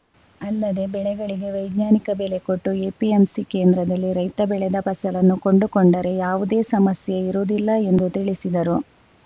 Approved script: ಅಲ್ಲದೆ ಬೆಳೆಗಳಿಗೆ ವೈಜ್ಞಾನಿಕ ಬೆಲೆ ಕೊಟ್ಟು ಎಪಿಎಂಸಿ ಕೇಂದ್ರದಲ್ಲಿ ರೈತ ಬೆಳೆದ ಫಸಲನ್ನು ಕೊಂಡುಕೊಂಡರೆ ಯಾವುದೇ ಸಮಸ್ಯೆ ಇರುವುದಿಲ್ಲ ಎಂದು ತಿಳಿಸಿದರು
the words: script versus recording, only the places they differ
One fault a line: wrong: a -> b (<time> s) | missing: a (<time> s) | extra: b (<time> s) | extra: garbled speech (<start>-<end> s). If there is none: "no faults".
no faults